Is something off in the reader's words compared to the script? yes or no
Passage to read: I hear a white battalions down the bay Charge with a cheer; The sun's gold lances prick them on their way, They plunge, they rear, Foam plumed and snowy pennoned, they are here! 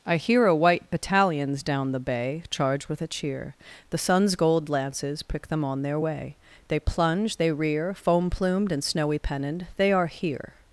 no